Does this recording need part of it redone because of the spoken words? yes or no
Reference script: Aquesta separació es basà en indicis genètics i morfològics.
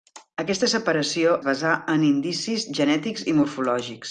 yes